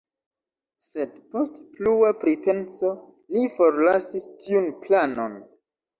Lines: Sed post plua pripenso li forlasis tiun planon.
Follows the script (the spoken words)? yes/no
yes